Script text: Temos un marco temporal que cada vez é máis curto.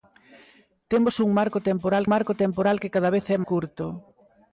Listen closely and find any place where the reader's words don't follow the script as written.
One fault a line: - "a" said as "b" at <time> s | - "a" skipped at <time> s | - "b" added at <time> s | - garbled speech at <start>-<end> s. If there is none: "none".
- "marco temporal" added at 2.1 s
- "máis" skipped at 3.4 s